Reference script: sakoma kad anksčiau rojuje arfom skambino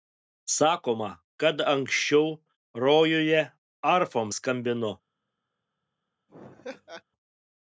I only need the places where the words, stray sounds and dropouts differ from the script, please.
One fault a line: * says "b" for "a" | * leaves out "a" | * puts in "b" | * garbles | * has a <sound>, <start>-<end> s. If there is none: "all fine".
* has a laugh, 6.3-7.0 s